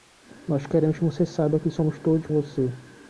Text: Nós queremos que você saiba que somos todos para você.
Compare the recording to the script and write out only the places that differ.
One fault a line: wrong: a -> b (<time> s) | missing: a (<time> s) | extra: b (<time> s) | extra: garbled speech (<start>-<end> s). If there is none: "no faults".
missing: para (2.3 s)